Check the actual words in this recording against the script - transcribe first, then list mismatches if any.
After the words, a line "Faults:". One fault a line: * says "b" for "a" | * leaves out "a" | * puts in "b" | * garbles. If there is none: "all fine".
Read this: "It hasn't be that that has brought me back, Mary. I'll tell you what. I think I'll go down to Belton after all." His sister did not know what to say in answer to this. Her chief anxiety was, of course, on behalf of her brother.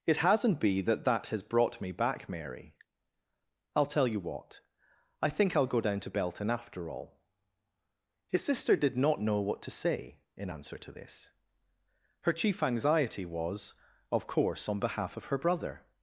"It hasn't be that that has brought me back, Mary. I'll tell you what. I think I'll go down to Belton after all." His sister did not know what to say in answer to this. Her chief anxiety was, of course, on behalf of her brother.
Faults:
all fine